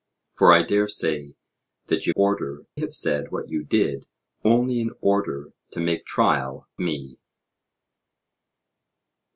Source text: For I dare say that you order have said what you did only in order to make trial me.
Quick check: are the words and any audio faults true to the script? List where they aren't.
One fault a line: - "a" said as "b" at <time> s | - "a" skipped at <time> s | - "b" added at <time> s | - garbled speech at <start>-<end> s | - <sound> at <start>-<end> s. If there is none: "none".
none